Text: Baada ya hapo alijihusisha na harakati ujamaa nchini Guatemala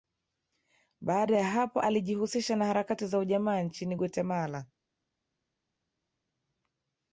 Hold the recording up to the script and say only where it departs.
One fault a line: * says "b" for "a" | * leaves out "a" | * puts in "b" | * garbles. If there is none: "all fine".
* puts in "za"